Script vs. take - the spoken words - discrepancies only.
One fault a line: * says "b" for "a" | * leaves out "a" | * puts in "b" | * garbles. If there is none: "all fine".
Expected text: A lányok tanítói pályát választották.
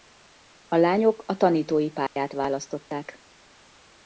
* puts in "a"